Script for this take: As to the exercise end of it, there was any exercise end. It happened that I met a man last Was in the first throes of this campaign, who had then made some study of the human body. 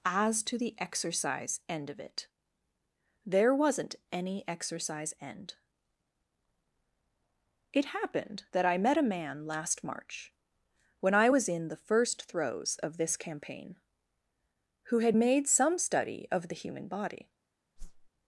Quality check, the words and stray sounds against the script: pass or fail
fail